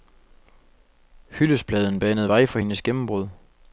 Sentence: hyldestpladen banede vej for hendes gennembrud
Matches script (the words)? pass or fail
pass